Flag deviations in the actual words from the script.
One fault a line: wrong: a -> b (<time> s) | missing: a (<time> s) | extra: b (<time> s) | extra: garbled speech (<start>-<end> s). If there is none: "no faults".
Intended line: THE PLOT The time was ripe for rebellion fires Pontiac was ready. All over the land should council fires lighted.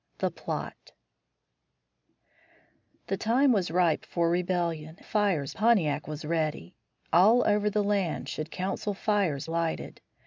no faults